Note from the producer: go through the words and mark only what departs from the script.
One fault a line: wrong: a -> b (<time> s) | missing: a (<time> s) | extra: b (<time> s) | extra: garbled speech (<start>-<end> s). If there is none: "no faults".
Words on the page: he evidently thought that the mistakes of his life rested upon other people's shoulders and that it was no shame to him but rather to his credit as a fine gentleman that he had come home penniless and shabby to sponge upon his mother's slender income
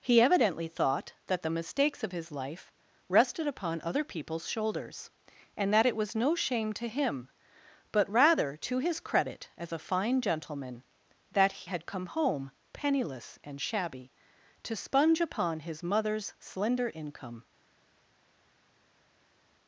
missing: he (11.7 s)